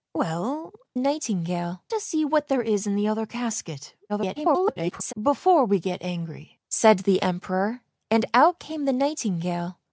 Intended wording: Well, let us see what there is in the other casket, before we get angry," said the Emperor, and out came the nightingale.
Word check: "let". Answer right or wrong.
wrong